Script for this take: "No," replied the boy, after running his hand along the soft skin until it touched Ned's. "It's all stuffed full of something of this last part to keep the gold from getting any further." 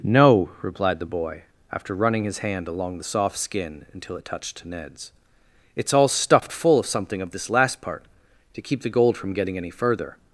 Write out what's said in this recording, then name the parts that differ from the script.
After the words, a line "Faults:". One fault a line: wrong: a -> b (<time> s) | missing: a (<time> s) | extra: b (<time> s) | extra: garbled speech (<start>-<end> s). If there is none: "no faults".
"No," replied the boy, after running his hand along the soft skin until it touched Ned's. "It's all stuffed full of something of this last part to keep the gold from getting any further."
Faults:
no faults